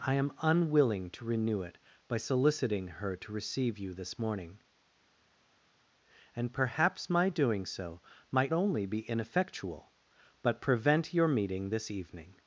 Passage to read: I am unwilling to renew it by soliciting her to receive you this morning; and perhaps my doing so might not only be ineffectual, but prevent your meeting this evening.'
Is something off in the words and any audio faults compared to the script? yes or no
yes